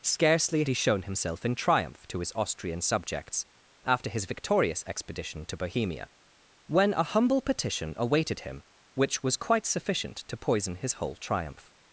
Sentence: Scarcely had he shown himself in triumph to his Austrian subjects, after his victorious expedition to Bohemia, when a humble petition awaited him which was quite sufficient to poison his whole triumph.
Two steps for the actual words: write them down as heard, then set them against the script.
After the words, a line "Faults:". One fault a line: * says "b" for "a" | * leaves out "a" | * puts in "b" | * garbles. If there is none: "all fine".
Scarcely he shown himself in triumph to his Austrian subjects, after his victorious expedition to Bohemia, when a humble petition awaited him which was quite sufficient to poison his whole triumph.
Faults:
* leaves out "had"